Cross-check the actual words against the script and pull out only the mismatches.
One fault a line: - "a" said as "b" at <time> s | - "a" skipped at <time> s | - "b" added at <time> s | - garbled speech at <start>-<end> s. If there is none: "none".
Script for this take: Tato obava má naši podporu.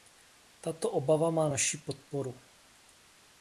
none